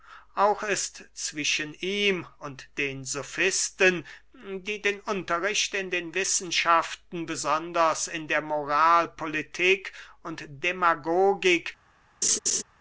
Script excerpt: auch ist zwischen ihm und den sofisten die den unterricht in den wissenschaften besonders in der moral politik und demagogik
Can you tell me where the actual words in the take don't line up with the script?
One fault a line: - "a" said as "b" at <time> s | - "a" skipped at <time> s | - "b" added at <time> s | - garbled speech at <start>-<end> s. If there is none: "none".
none